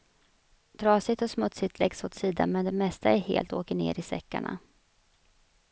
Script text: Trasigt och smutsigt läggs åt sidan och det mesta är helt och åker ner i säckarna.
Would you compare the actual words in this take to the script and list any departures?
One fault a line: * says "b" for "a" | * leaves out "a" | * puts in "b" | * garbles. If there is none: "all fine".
* says "men" for "och"